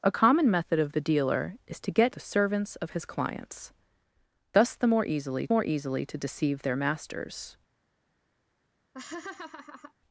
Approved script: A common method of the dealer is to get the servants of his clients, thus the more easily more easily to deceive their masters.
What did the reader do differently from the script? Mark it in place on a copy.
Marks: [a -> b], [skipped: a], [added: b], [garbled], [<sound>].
A common method of the dealer is to get the servants of his clients, thus the more easily more easily to deceive their masters. [laugh]